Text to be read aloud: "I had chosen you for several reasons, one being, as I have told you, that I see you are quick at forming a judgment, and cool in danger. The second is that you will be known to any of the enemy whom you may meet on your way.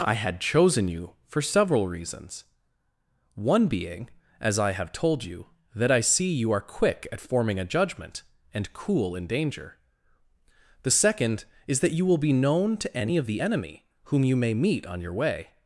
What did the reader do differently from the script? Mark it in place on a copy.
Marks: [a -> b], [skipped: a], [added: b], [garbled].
"I had chosen you for several reasons, one being, as I have told you, that I see you are quick at forming a judgment, and cool in danger. The second is that you will be known to any of the enemy whom you may meet on your way.